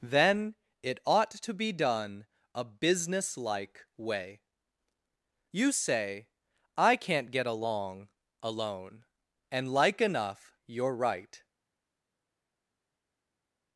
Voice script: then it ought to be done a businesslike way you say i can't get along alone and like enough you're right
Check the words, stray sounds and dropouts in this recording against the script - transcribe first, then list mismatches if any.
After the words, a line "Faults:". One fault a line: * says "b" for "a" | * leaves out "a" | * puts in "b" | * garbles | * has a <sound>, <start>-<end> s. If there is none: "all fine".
then it ought to be done a businesslike way you say i can't get along alone and like enough you're right
Faults:
all fine